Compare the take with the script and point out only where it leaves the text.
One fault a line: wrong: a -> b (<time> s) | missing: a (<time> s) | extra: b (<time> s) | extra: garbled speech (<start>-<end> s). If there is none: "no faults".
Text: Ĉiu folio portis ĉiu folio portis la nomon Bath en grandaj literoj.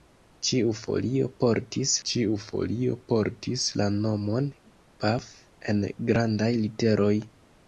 no faults